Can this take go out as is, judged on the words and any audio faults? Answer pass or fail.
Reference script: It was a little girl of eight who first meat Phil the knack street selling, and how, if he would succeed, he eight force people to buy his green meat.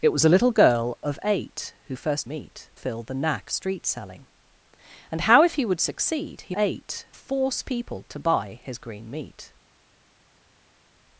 pass